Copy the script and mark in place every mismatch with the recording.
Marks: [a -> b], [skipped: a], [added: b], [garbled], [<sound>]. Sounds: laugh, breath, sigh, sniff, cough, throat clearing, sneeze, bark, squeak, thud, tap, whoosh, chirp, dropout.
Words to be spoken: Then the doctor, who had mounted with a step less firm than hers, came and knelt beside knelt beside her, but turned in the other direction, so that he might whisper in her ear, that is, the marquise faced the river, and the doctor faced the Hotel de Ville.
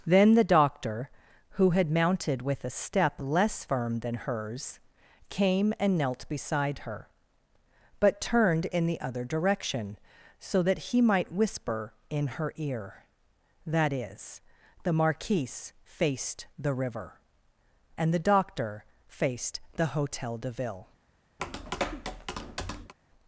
Then the doctor, who had mounted with a step less firm than hers, came and knelt beside [skipped: knelt beside] her, but turned in the other direction, so that he might whisper in her ear, that is, the marquise faced the river, and the doctor faced the Hotel de Ville. [tap]